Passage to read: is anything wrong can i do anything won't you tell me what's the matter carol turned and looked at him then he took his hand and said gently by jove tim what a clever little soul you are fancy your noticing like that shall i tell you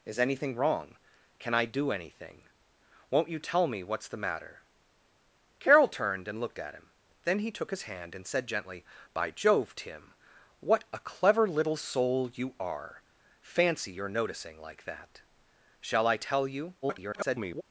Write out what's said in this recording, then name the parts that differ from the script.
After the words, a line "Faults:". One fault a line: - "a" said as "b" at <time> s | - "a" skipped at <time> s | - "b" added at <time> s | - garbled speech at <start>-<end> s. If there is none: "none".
is anything wrong can i do anything won't you tell me what's the matter carol turned and looked at him then he took his hand and said gently by jove tim what a clever little soul you are fancy your noticing like that shall i tell you [garbled]
Faults:
- garbled speech at 16.8-17.6 s